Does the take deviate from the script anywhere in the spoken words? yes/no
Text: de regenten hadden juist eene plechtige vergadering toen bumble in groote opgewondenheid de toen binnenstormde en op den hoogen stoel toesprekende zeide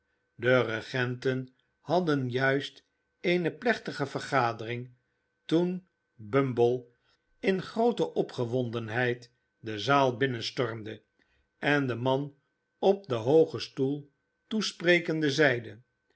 yes